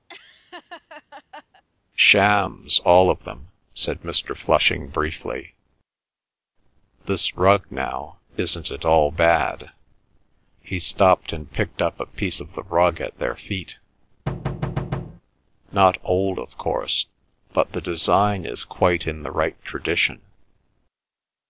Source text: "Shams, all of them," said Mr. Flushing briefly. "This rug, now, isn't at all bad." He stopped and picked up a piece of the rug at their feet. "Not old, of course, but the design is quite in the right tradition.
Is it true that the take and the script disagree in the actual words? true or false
false